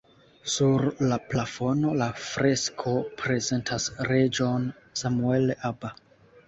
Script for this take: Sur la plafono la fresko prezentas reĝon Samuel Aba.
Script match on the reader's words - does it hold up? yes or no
yes